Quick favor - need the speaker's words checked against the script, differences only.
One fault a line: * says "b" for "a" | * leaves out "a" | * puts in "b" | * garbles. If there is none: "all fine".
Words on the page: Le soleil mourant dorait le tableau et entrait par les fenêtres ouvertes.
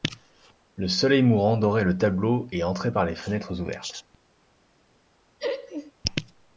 all fine